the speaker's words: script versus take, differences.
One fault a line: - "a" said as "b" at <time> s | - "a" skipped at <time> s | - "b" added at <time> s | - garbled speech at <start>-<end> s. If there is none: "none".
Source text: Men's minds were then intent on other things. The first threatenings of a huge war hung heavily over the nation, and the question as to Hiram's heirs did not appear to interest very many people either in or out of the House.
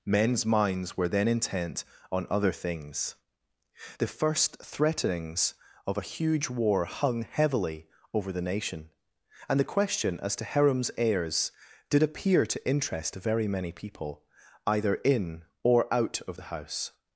- "not" skipped at 12.0 s